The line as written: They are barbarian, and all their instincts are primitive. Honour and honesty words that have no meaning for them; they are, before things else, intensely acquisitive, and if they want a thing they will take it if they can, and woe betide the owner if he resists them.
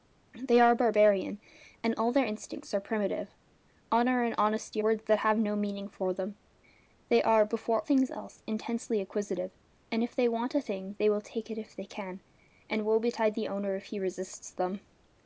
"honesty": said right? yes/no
yes